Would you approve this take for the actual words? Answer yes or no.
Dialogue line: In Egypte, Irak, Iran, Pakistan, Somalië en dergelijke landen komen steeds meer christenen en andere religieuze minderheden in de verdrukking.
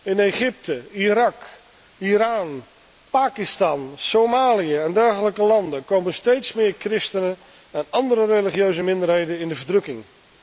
yes